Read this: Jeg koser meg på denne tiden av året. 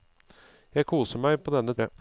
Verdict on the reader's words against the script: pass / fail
fail